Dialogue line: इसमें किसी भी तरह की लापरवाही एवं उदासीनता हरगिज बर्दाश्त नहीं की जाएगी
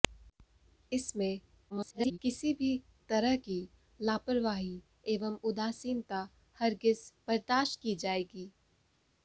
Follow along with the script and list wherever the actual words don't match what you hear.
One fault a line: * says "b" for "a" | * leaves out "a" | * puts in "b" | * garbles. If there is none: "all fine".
* garbles
* leaves out "नहीं"